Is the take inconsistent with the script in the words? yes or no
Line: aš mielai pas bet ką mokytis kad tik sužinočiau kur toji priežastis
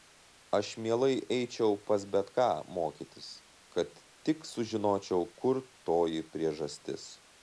yes